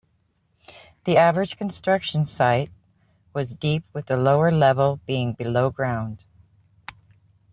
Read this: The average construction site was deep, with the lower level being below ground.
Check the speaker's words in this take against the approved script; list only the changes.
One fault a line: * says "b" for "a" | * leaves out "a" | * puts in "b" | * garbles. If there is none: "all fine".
all fine